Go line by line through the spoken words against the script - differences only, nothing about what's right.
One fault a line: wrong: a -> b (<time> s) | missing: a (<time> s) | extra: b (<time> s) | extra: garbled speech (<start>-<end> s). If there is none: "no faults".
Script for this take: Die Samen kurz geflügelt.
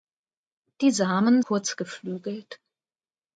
no faults